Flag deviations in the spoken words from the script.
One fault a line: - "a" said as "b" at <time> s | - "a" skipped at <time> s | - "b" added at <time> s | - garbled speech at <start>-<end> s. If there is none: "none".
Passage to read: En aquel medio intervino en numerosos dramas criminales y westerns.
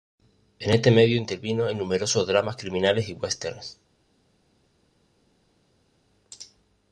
- "aquel" said as "este" at 0.7 s